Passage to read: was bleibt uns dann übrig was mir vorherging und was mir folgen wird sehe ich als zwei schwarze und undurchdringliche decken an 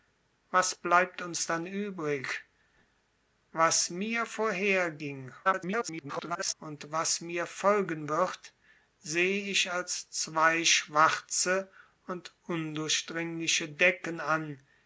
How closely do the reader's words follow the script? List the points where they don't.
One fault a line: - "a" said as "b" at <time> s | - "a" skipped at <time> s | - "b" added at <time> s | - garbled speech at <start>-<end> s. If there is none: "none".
- garbled speech at 5.4-6.5 s